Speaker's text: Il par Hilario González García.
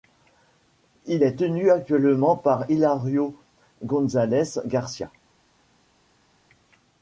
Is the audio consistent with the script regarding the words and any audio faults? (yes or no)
no